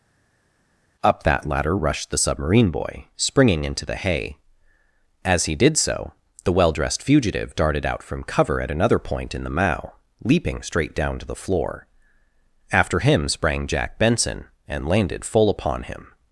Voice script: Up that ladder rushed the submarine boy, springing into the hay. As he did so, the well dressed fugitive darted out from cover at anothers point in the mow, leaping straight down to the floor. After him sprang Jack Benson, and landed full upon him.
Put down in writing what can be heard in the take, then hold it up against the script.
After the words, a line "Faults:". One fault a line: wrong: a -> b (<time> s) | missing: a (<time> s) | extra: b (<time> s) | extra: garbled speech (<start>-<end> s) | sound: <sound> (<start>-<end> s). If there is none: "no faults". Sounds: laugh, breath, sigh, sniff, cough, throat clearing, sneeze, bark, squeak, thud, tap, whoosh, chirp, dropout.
Up that ladder rushed the submarine boy, springing into the hay. As he did so, the well dressed fugitive darted out from cover at another point in the mow, leaping straight down to the floor. After him sprang Jack Benson, and landed full upon him.
Faults:
wrong: anothers -> another (8.7 s)